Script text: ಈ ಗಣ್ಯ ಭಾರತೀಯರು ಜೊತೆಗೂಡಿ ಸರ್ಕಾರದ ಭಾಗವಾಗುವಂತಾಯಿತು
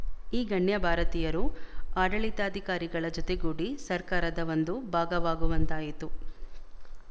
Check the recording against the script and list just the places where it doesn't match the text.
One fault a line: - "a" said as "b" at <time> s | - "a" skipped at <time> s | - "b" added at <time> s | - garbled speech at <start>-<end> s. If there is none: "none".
- "ಆಡಳಿತಾಧಿಕಾರಿಗಳ" added at 2.0 s
- "ಒಂದು" added at 4.5 s